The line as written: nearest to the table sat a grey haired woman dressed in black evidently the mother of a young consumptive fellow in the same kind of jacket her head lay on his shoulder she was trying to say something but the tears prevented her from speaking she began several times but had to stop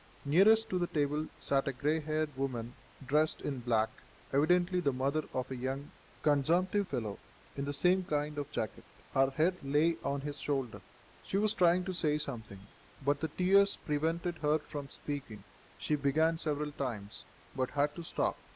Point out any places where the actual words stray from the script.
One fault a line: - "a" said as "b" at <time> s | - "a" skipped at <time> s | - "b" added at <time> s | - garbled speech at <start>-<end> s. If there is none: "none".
none